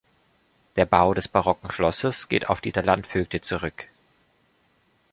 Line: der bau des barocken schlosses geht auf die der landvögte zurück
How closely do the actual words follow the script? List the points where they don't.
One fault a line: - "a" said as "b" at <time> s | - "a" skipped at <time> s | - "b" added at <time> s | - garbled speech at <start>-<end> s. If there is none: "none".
none